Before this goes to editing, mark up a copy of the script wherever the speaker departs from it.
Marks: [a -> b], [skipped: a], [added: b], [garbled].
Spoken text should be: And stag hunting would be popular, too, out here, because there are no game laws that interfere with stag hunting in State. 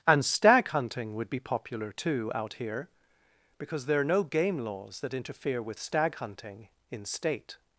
And stag hunting would be popular, too, out here, because there are no game laws that interfere with stag hunting in State.